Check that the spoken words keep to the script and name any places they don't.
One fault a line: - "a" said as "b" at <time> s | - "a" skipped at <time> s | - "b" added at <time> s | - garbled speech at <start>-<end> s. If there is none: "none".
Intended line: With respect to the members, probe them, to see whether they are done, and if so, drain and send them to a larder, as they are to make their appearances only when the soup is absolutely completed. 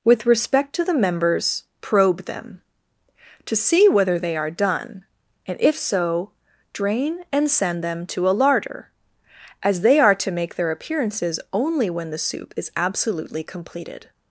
none